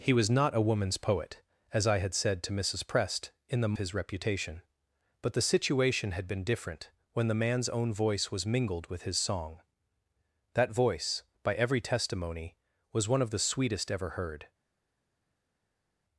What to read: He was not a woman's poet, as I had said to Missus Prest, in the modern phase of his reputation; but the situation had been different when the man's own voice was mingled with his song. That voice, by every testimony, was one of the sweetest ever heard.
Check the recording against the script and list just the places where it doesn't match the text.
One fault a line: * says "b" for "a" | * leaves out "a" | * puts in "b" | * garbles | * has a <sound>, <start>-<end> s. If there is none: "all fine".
* leaves out "modern phase of"